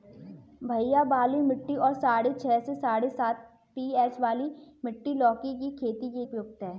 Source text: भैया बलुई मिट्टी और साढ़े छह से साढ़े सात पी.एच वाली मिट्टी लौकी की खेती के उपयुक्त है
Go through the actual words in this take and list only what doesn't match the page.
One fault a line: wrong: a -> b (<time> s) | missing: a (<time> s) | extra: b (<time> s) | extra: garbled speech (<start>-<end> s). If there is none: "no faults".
no faults